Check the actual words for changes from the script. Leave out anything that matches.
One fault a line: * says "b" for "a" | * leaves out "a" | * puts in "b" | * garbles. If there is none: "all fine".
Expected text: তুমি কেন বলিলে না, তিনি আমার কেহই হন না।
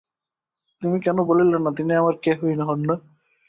all fine